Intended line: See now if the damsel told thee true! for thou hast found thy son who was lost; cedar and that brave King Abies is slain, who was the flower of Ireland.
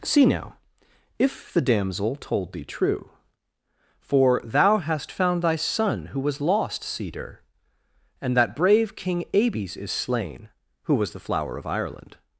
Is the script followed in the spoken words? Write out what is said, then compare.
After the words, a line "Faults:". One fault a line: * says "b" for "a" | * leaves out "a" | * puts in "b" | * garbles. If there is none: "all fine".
See now if the damsel told thee true! for thou hast found thy son who was lost; cedar and that brave King Abies is slain, who was the flower of Ireland.
Faults:
all fine